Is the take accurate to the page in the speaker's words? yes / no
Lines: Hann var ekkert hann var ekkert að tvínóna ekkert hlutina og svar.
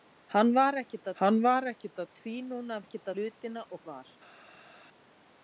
yes